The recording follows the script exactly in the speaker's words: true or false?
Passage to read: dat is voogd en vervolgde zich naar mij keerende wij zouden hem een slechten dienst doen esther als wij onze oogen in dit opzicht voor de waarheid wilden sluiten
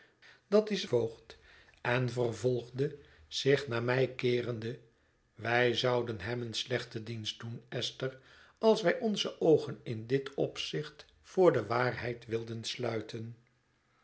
true